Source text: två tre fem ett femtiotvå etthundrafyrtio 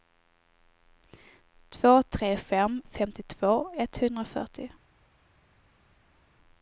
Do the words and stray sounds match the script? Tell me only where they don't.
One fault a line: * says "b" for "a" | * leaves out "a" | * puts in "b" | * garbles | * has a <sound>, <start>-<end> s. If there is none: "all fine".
* leaves out "ett"